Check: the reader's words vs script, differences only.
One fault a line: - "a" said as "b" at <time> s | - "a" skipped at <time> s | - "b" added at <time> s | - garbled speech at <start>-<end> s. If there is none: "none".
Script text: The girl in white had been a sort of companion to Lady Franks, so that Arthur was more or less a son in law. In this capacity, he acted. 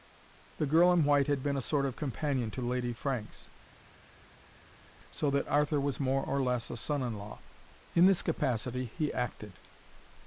none